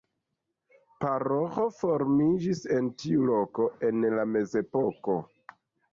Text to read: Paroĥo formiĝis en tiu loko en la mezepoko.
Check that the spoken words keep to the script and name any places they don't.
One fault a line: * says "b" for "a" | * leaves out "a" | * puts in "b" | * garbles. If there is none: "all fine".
all fine